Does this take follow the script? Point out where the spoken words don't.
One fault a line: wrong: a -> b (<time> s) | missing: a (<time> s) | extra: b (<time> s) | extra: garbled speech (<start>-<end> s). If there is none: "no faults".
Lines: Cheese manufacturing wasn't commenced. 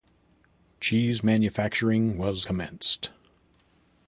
wrong: wasn't -> was (2.2 s)